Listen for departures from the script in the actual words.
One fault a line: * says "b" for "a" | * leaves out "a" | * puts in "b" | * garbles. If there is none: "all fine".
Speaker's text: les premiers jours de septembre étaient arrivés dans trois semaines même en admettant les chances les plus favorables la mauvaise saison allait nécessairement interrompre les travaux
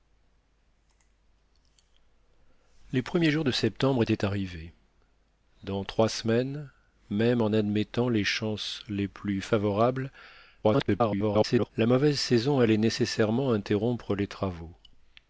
* garbles